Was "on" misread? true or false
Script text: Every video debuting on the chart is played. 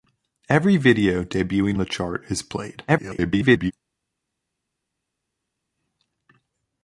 true